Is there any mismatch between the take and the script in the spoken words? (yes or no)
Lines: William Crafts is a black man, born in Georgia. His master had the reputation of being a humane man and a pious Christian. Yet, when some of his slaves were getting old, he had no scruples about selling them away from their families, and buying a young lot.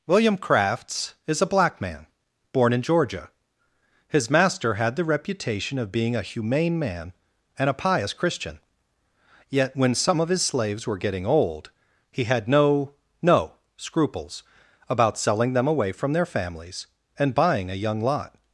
yes